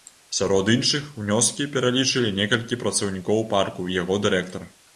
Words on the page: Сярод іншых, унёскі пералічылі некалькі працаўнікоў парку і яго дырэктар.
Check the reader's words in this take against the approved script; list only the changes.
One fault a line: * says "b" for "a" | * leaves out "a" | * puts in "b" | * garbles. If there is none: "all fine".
all fine